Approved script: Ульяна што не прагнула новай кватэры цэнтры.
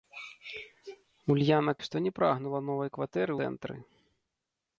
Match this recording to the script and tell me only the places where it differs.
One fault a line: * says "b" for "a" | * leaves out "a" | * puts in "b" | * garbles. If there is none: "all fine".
all fine